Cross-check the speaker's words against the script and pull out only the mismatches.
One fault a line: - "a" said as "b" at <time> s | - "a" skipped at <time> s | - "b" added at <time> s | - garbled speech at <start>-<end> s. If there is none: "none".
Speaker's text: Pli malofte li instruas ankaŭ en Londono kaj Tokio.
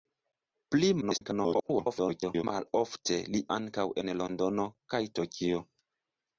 - garbled speech at 1.0-2.4 s
- "instruas" skipped at 3.4 s